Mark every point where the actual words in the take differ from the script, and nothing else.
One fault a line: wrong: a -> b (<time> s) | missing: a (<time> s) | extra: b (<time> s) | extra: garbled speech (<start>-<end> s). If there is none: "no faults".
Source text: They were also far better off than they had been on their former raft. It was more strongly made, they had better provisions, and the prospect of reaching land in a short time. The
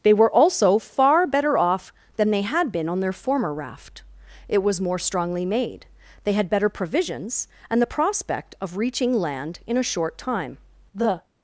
no faults